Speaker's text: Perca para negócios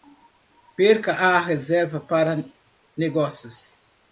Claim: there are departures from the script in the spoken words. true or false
true